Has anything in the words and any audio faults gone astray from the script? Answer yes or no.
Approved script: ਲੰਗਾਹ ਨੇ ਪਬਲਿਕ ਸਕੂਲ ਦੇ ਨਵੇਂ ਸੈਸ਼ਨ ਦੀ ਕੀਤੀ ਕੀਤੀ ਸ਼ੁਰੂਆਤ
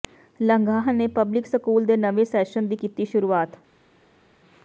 yes